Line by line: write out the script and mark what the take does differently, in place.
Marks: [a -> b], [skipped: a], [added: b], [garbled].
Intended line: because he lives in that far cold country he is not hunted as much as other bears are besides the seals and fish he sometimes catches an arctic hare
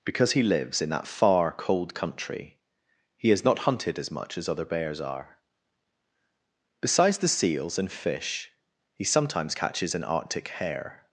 because he lives in that far cold country he is not hunted as much as other bears are besides the seals and fish he sometimes catches an arctic hare